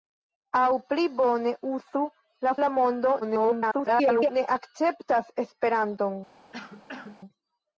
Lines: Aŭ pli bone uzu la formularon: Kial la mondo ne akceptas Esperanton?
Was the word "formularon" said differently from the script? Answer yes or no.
yes